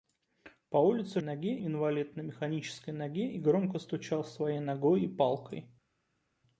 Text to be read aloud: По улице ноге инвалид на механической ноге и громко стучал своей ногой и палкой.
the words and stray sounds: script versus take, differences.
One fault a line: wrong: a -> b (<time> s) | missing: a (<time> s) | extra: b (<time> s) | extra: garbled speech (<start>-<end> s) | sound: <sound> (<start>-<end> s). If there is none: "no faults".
no faults